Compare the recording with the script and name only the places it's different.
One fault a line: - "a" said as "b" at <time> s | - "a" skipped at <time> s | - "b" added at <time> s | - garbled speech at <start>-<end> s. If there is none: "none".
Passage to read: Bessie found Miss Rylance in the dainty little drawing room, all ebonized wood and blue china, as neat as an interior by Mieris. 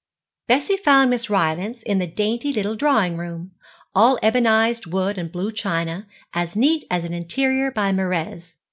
none